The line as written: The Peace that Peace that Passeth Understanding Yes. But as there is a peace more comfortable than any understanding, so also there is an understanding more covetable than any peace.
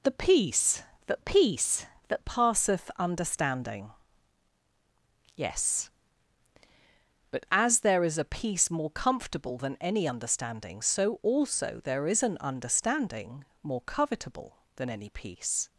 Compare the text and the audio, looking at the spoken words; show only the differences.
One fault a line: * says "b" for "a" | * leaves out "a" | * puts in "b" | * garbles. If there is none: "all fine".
all fine